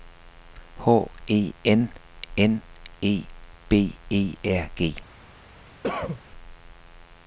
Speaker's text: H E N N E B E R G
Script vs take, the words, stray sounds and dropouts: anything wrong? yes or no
yes